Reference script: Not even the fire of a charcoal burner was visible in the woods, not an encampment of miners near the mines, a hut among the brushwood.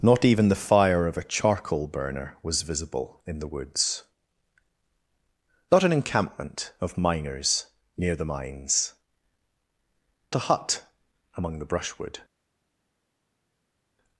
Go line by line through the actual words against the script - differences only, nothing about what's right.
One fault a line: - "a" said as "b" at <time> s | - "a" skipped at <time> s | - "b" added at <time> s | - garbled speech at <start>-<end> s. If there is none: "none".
none